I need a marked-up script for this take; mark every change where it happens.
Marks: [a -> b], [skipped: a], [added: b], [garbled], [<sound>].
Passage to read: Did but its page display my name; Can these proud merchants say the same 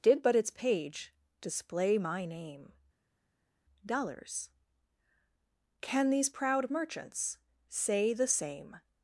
Did but its page display my name; [added: dollars] Can these proud merchants say the same